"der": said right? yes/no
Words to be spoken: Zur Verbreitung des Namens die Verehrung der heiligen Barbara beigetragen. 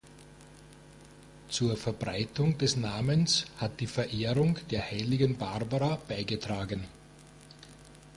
yes